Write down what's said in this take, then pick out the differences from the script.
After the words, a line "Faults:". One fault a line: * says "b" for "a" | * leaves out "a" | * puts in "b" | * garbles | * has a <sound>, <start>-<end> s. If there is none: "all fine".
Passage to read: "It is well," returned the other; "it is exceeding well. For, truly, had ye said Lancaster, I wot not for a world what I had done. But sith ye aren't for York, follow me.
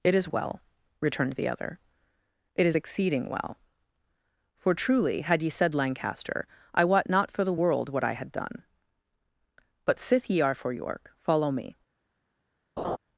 "It is well," returned the other; "it is exceeding well. For, truly, had ye said Lancaster, I wot not for the world what I had done. But sith ye are for York, follow me.
Faults:
* says "the" for "a"
* says "are" for "aren't"
* has a laugh, 12.8-13.0 s